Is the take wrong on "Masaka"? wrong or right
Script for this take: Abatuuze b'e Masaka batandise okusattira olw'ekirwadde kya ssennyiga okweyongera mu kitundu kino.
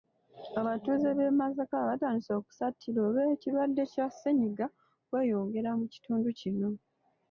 right